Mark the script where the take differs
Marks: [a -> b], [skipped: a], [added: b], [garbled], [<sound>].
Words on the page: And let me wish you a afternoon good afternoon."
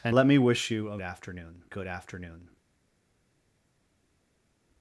And let me wish you a afternoon good afternoon."